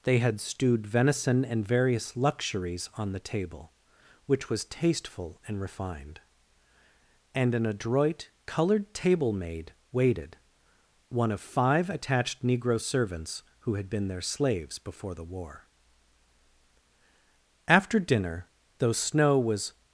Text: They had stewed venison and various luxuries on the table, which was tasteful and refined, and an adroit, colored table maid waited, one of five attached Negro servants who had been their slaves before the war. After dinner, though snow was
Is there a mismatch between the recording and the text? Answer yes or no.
no